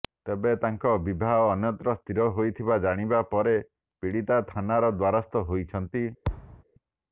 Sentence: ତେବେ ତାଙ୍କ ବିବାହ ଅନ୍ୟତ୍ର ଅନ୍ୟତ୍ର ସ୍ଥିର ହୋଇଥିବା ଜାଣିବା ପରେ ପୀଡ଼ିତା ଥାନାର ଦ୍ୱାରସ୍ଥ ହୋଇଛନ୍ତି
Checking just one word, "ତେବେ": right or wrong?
right